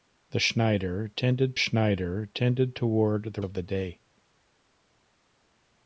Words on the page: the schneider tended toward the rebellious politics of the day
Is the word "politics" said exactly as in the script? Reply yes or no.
no